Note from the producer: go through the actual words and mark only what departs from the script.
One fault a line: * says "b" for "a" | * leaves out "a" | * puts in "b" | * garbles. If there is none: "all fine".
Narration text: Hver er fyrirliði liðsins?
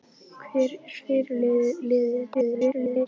* garbles